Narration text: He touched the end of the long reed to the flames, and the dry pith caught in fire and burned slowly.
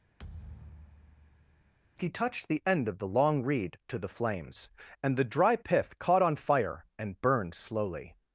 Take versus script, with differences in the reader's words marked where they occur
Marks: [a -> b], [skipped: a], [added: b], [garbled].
He touched the end of the long reed to the flames, and the dry pith caught [in -> on] fire and burned slowly.